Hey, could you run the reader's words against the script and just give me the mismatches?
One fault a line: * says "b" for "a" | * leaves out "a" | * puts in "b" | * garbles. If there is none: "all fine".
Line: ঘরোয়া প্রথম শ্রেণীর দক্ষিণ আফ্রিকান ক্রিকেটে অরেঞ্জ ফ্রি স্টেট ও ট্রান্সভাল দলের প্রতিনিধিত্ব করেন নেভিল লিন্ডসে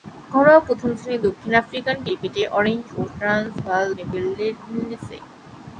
* leaves out "ফ্রি স্টেট"
* leaves out "দলের প্রতিনিধিত্ব করেন"